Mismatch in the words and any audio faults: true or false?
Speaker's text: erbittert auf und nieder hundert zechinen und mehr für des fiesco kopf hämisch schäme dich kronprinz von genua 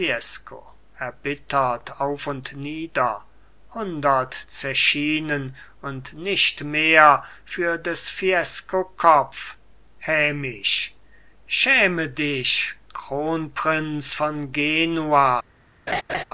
true